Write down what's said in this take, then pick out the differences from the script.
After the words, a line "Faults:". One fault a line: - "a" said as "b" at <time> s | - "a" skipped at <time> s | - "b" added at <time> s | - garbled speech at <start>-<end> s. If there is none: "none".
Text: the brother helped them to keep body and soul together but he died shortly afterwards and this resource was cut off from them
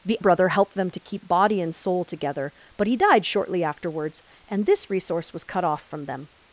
the brother helped them to keep body and soul together but he died shortly afterwards and this resource was cut off from them
Faults:
none